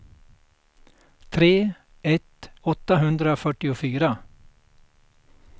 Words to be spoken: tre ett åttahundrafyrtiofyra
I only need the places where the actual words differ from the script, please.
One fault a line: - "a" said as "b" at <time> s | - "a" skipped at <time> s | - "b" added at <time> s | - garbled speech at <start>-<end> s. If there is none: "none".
none